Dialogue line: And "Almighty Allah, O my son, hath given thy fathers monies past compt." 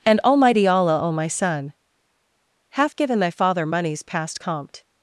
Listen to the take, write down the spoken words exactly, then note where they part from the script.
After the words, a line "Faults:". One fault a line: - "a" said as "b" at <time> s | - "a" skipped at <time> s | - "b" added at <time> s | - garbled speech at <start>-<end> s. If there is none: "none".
And "Almighty Allah, O my son, hath given thy father monies past compt."
Faults:
- "fathers" said as "father" at 3.3 s